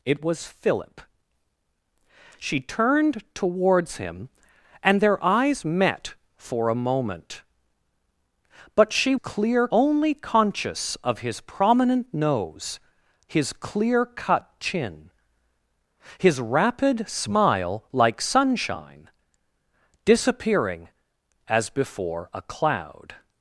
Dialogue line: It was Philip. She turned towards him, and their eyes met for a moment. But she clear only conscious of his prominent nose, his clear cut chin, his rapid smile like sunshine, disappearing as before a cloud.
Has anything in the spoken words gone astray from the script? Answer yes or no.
no